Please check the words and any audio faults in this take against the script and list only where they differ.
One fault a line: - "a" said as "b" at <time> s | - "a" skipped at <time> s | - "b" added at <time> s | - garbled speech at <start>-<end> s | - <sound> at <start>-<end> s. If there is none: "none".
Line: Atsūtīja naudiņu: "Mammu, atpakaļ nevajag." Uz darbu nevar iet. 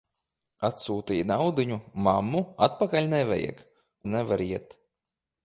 - "Uz darbu" skipped at 3.6 s